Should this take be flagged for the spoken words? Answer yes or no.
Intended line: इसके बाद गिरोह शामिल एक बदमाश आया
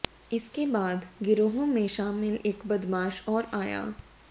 yes